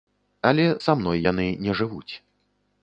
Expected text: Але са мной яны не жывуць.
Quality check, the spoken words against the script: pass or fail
pass